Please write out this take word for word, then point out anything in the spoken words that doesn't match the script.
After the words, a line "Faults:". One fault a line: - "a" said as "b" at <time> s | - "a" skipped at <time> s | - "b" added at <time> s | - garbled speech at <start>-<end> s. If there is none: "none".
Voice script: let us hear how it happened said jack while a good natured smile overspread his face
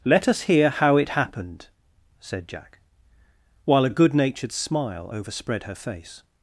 let us hear how it happened said jack while a good natured smile overspread her face
Faults:
- "his" said as "her" at 5.6 s